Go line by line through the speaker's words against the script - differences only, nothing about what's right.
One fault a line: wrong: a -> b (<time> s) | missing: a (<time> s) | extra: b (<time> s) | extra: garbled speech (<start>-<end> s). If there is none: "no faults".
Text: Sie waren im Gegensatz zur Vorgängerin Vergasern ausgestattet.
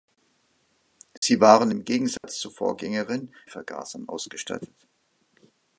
no faults